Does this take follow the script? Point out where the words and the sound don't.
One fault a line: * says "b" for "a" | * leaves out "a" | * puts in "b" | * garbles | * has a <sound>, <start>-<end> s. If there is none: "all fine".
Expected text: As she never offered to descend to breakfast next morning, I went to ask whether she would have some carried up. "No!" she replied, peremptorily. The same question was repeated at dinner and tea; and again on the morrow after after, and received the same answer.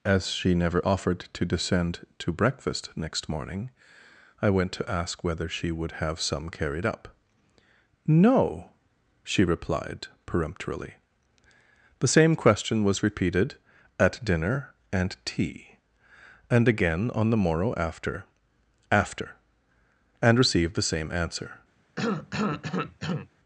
* has a cough, 22.0-23.3 s